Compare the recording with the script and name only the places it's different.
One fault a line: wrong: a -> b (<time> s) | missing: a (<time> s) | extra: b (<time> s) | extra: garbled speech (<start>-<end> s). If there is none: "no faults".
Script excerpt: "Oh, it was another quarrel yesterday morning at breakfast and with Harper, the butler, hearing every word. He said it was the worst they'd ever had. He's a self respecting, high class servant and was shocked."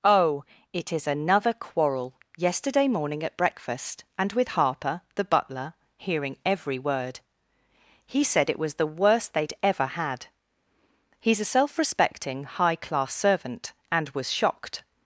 wrong: was -> is (0.9 s)